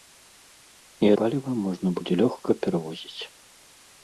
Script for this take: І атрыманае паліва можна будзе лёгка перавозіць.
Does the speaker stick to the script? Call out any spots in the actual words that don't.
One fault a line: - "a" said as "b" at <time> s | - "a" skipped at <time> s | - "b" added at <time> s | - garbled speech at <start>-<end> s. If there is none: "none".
- "атрыманае" skipped at 1.1 s